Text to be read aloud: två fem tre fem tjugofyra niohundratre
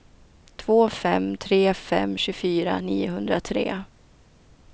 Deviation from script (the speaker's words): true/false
false